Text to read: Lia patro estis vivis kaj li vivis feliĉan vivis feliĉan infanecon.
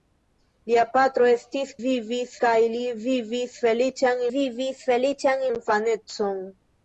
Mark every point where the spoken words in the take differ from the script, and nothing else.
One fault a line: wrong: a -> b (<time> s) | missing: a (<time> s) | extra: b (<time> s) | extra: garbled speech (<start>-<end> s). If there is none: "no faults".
no faults